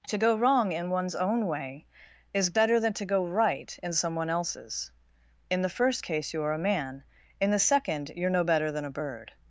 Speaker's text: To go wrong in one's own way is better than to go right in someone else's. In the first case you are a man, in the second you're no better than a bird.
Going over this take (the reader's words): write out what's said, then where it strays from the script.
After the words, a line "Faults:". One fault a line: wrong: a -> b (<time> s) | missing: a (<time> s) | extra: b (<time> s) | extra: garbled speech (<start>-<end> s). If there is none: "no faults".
To go wrong in one's own way is better than to go right in someone else's. In the first case you are a man, in the second you're no better than a bird.
Faults:
no faults